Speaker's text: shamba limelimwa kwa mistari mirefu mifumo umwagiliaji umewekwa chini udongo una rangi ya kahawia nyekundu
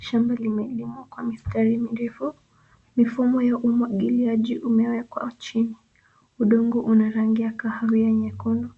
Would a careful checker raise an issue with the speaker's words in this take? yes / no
yes